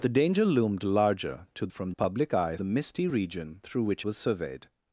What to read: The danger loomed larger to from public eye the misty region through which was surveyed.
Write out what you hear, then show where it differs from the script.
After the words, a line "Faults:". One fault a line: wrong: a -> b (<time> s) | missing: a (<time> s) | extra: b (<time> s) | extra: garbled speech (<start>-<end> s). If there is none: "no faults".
The danger loomed larger to from public eye the misty region through which was surveyed.
Faults:
no faults